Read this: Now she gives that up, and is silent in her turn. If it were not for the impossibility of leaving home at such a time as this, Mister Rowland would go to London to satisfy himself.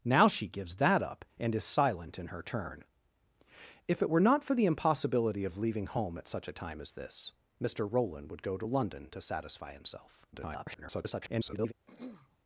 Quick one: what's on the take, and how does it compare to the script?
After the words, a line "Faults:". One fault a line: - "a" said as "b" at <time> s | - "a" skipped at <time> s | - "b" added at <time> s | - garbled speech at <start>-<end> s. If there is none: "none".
Now she gives that up, and is silent in her turn. If it were not for the impossibility of leaving home at such a time as this, Mister Rowland would go to London to satisfy himself. [garbled]
Faults:
- garbled speech at 10.3-11.7 s